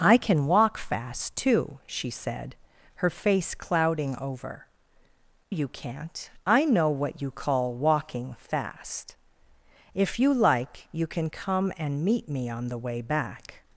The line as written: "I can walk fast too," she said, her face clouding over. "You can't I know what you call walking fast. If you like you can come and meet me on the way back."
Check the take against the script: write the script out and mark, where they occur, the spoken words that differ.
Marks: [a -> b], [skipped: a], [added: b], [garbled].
"I can walk fast too," she said, her face clouding over. "You can't I know what you call walking fast. If you like you can come and meet me on the way back."